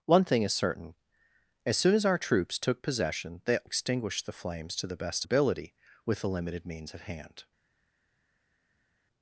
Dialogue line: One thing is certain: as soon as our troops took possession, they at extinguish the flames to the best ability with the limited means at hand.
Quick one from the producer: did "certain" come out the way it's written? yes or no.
yes